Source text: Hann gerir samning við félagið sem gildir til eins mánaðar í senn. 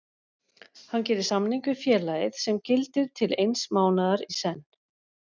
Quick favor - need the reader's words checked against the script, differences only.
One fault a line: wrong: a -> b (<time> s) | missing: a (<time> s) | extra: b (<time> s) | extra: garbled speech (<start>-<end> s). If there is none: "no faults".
no faults